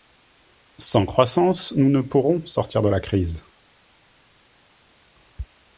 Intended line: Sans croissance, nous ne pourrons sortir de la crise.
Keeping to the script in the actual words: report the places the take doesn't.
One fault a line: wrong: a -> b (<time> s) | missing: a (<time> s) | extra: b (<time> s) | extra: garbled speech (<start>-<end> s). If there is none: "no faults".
no faults